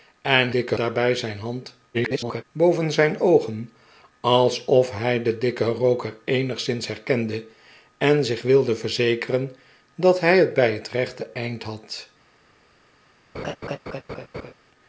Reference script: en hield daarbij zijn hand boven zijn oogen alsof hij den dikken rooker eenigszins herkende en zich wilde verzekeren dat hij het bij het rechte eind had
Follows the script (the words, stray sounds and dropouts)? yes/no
no